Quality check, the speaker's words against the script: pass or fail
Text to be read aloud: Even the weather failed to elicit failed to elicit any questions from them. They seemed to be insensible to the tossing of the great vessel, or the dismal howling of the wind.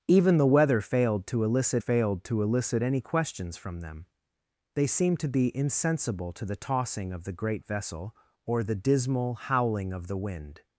pass